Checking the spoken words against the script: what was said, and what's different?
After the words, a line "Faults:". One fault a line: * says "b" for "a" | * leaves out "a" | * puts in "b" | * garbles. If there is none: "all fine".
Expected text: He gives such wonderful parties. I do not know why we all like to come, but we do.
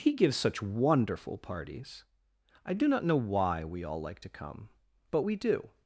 He gives such wonderful parties. I do not know why we all like to come, but we do.
Faults:
all fine